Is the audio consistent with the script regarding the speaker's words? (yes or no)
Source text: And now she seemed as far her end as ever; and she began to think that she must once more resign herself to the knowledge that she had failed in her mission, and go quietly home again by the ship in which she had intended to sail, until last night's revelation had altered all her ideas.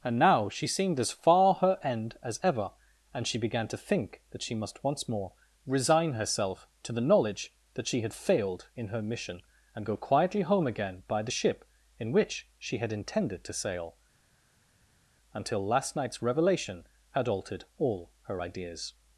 yes